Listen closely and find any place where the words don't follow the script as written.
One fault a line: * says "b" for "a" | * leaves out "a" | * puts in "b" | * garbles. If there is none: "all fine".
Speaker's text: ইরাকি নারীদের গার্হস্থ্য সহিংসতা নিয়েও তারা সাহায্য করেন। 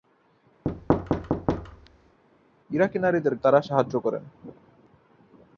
* leaves out "গার্হস্থ্য সহিংসতা নিয়েও"